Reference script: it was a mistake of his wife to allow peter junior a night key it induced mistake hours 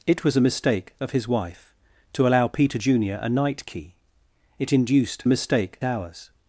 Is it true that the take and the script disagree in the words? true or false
false